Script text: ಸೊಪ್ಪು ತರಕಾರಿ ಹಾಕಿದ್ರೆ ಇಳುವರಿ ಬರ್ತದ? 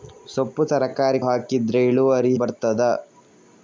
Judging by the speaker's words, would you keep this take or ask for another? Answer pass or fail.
pass